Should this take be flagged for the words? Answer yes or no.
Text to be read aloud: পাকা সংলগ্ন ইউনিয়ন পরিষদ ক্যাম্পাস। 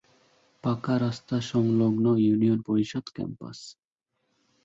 yes